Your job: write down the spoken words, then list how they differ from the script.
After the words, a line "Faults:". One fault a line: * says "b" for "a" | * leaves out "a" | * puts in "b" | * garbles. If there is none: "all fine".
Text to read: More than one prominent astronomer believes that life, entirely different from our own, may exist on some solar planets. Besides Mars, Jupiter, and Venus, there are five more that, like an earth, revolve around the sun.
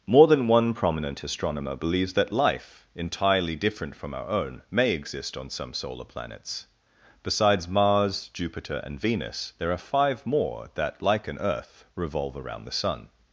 More than one prominent astronomer believes that life, entirely different from our own, may exist on some solar planets. Besides Mars, Jupiter, and Venus, there are five more that, like an earth, revolve around the sun.
Faults:
all fine